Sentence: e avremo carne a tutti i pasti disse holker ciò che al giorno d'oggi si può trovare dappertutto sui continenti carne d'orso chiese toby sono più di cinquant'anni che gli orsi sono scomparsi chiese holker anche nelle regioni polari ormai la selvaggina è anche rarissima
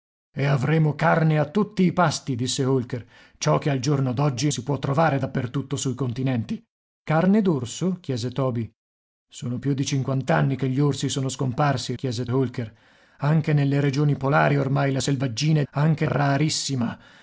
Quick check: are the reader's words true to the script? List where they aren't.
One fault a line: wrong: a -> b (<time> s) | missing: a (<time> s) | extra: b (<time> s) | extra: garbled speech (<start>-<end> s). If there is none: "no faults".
no faults